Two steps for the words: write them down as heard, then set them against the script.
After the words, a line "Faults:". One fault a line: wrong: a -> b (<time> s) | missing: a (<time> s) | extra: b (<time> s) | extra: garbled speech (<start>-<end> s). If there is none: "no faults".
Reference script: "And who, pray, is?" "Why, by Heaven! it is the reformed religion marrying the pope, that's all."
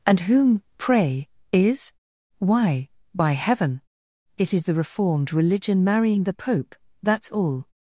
"And whom, pray, is?" "Why, by Heaven! it is the reformed religion marrying the pope, that's all."
Faults:
wrong: who -> whom (0.2 s)